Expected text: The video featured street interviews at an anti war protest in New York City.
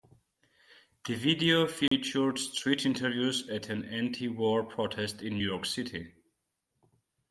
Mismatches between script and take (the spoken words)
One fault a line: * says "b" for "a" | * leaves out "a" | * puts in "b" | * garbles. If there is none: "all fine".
* leaves out "New"